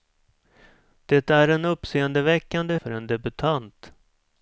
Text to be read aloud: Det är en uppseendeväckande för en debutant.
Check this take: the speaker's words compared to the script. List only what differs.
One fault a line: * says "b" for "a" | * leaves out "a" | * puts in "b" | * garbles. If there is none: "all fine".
all fine